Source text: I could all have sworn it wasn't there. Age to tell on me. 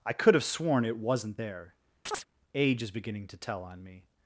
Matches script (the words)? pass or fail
fail